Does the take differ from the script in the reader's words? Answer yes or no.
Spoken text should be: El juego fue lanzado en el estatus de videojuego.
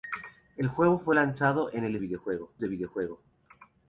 yes